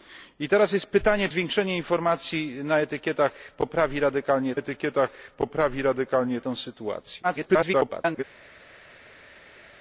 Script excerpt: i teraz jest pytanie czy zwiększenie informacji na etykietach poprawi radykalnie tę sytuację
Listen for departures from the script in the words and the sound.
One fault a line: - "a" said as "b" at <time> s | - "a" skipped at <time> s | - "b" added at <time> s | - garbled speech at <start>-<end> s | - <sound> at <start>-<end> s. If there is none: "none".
- "czy" skipped at 1.3 s
- "etykietach poprawi radykalnie" added at 4.5 s
- garbled speech at 7.2-8.2 s